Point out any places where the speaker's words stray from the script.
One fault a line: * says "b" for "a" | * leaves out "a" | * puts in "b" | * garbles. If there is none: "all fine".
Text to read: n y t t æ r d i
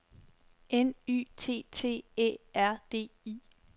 all fine